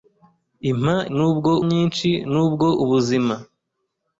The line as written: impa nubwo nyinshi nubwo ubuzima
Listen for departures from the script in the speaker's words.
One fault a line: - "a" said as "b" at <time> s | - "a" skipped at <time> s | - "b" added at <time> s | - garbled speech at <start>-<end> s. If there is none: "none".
none